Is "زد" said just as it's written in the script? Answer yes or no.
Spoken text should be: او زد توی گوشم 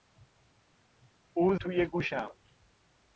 no